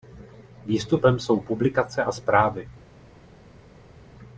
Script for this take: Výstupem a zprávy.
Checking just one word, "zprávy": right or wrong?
right